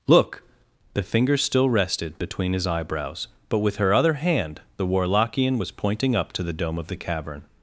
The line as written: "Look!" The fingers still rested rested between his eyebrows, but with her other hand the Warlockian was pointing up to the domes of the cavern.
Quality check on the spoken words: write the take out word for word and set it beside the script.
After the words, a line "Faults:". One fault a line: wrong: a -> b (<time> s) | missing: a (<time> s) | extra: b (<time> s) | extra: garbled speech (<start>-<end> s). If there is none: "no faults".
"Look!" The fingers still rested between his eyebrows, but with her other hand the Warlockian was pointing up to the dome of the cavern.
Faults:
missing: rested (2.2 s)
wrong: domes -> dome (6.5 s)